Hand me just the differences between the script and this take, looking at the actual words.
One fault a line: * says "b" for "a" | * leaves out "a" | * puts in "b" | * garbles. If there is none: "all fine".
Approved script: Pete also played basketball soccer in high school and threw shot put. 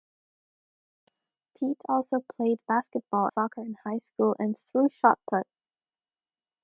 all fine